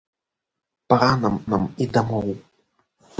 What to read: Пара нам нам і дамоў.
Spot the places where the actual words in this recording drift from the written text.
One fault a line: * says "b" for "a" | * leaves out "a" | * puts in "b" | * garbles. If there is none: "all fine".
all fine